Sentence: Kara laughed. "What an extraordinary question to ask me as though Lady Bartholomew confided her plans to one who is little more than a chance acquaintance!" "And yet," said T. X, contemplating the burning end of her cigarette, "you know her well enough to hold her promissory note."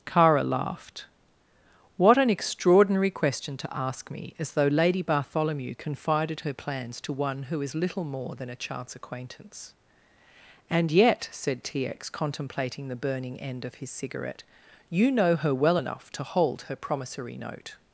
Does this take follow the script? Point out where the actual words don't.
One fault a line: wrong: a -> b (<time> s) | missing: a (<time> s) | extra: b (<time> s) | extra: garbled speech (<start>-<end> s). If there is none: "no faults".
wrong: her -> his (13.8 s)